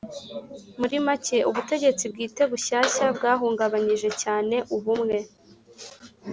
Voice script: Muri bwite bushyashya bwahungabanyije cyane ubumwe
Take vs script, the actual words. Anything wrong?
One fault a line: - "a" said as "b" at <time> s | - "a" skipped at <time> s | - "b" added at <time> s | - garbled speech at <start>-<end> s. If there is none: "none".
- "make ubutegetsi" added at 1.0 s